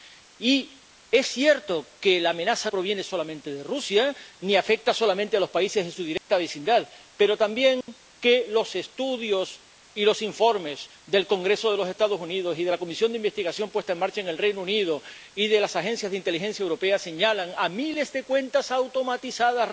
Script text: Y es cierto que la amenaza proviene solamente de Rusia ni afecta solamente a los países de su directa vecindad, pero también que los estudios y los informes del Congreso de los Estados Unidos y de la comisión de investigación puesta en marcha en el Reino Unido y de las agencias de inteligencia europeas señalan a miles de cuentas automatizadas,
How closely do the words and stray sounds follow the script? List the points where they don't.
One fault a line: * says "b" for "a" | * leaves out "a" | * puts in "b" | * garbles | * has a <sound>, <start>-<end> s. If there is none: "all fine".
* has a dropout, 6.2-6.3 s
* has a dropout, 7.8-7.9 s